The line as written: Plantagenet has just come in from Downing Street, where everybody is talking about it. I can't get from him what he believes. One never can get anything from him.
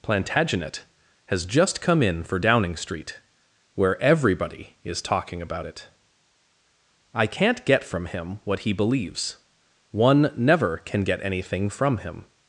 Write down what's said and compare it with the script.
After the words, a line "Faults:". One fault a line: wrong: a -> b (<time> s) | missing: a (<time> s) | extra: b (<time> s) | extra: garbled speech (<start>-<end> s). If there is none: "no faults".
Plantagenet has just come in for Downing Street, where everybody is talking about it. I can't get from him what he believes. One never can get anything from him.
Faults:
wrong: from -> for (2.2 s)